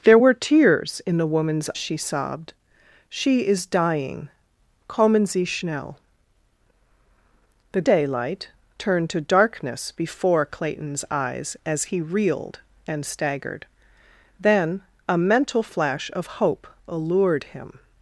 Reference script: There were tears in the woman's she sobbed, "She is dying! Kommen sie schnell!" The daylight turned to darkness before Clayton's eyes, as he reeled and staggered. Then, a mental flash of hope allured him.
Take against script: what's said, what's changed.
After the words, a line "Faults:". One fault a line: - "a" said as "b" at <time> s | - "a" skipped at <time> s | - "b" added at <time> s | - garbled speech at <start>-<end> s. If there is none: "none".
There were tears in the woman's she sobbed, "She is dying! Kommen sie schnell!" The daylight turned to darkness before Clayton's eyes, as he reeled and staggered. Then, a mental flash of hope allured him.
Faults:
none